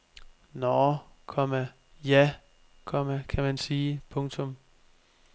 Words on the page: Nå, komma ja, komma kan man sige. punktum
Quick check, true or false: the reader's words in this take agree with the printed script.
true